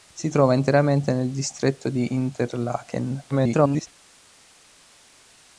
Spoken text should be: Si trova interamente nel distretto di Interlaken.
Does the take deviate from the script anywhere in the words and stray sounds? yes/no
yes